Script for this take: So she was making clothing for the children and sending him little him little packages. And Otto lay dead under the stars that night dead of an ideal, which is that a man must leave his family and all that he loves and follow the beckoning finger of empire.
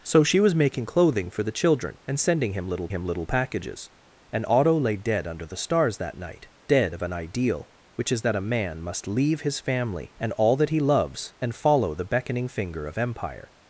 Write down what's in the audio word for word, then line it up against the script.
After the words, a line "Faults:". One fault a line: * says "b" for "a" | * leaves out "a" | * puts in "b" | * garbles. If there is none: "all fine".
So she was making clothing for the children and sending him little him little packages. And Otto lay dead under the stars that night dead of an ideal, which is that a man must leave his family and all that he loves and follow the beckoning finger of empire.
Faults:
all fine